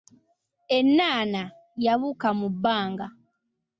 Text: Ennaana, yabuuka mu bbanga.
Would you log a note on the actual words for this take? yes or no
no